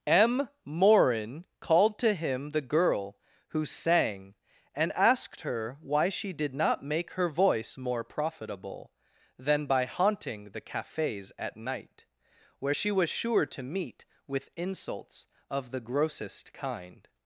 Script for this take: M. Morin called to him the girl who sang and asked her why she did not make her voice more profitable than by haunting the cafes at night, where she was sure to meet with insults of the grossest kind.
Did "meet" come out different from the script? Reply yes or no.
no